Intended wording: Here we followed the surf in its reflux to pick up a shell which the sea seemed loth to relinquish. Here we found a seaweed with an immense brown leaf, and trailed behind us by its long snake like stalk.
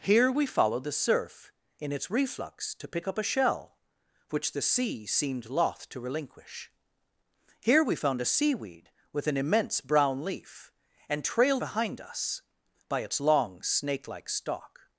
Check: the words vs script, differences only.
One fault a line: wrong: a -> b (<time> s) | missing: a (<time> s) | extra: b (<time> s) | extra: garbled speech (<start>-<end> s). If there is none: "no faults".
no faults